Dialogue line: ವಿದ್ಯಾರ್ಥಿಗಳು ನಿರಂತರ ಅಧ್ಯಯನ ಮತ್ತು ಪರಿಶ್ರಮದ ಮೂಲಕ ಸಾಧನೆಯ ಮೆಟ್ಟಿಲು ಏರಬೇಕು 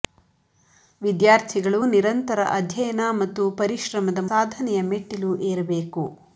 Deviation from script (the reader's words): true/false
true